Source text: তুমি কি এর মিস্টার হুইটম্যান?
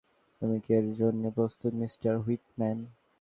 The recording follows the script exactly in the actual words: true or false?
false